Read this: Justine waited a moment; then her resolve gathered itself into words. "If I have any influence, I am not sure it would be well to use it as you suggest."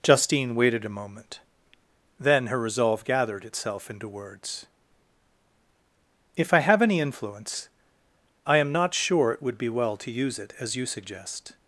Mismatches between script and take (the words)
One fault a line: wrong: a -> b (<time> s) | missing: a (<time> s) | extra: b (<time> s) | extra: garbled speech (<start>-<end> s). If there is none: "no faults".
no faults